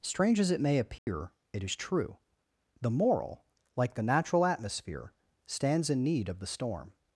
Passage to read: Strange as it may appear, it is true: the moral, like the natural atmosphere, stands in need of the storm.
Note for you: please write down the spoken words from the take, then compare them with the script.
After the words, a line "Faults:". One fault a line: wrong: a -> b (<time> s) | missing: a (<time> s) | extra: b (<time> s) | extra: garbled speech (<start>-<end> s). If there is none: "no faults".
Strange as it may appear, it is true: the moral, like the natural atmosphere, stands in need of the storm.
Faults:
no faults